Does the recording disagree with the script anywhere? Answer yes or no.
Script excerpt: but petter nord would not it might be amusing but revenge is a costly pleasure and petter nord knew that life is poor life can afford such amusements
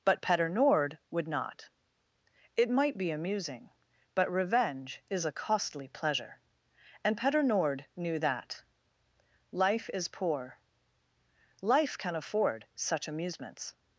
no